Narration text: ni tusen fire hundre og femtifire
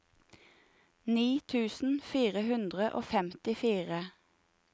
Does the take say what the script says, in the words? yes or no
yes